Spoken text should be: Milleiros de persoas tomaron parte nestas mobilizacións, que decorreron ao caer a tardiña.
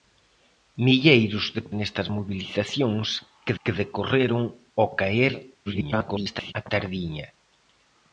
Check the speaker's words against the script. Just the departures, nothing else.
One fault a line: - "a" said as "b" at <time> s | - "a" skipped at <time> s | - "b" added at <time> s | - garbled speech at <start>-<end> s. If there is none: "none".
- "persoas tomaron parte" skipped at 1.6 s
- "que" added at 3.6 s
- garbled speech at 5.7-6.5 s